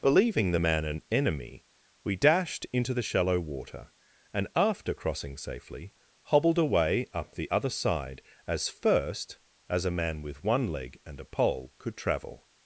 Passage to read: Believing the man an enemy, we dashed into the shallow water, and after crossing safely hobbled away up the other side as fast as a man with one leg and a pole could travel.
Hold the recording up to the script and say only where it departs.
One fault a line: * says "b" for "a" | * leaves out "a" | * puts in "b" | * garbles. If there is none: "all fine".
* says "first" for "fast"